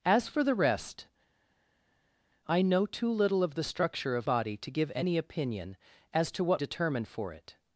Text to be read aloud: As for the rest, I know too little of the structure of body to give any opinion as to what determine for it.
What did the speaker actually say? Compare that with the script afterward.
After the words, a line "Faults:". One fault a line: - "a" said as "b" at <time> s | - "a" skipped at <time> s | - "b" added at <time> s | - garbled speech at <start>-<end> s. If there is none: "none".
As for the rest, I know too little of the structure of body to give any opinion as to what determine for it.
Faults:
none